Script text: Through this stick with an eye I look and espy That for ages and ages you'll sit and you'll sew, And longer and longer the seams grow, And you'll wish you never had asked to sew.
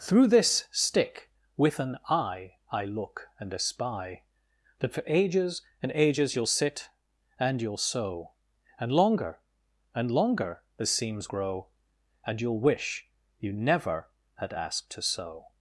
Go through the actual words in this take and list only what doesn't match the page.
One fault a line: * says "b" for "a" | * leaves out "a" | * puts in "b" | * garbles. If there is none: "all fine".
all fine